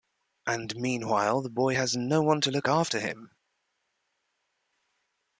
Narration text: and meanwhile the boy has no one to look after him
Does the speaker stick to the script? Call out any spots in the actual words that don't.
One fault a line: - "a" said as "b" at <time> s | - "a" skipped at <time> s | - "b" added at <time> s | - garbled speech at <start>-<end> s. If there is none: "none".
none